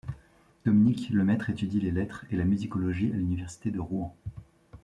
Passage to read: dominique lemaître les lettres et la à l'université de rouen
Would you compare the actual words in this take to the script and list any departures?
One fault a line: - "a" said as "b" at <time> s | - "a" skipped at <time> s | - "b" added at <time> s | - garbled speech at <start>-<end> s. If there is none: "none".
- "étudie" added at 1.5 s
- "musicologie" added at 2.4 s